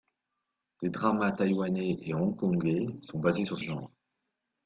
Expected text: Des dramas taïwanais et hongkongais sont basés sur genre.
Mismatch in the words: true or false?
false